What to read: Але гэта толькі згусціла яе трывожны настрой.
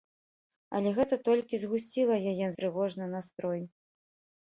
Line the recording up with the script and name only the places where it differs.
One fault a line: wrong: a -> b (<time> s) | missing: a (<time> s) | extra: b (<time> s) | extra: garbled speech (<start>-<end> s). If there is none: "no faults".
no faults